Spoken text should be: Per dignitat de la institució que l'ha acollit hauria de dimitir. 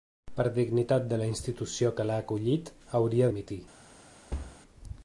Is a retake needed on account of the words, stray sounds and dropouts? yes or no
yes